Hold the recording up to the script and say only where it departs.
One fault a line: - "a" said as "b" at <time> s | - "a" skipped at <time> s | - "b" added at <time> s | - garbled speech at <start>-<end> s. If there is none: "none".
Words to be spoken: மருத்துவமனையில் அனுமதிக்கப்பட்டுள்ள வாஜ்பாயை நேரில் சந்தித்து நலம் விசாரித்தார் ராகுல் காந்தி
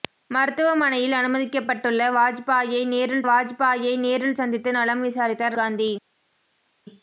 - "வாஜ்பாயை நேரில்" added at 3.2 s
- "ராகுல்" skipped at 5.6 s